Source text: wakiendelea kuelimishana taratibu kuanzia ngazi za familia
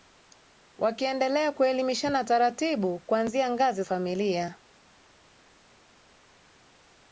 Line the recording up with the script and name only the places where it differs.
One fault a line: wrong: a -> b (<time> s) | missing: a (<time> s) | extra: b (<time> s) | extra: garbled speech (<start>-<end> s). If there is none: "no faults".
missing: za (3.8 s)